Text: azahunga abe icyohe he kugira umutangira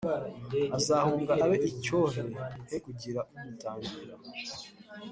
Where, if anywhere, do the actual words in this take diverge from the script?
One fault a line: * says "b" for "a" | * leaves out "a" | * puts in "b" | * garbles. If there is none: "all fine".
all fine